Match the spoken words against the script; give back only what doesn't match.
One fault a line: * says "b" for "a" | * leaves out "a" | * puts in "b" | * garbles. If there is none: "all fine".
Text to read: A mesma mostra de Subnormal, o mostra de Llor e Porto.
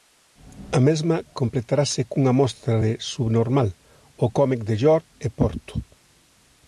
* puts in "completarase cunha"
* says "cómic" for "mostra"